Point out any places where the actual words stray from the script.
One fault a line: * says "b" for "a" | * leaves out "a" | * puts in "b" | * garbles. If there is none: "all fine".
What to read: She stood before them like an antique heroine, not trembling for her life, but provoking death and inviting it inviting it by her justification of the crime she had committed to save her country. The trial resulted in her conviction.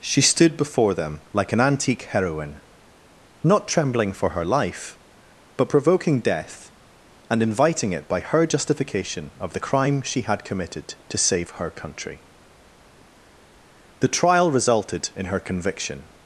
* leaves out "inviting it"